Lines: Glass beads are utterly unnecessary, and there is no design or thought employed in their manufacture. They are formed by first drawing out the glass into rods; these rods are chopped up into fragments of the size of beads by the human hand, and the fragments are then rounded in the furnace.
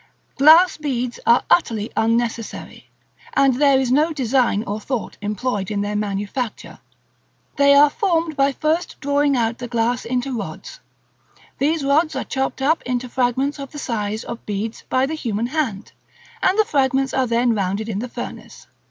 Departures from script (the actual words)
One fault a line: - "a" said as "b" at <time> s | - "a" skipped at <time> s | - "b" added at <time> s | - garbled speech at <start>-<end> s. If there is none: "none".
none